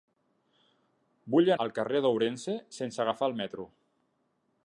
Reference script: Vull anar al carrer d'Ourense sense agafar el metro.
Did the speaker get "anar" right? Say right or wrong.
wrong